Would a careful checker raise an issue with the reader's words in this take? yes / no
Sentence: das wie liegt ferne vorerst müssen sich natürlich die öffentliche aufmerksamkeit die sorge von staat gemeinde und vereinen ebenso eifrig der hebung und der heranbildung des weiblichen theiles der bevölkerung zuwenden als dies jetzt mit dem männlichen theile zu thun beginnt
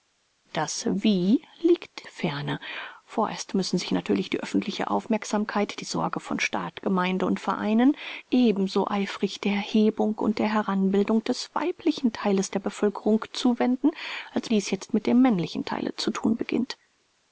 no